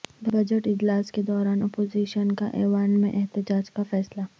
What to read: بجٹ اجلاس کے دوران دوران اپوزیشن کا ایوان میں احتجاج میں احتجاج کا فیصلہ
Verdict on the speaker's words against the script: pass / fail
fail